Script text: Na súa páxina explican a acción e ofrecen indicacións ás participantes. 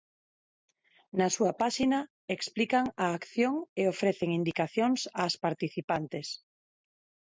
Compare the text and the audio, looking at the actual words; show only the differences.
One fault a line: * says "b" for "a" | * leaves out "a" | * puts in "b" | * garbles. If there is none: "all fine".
all fine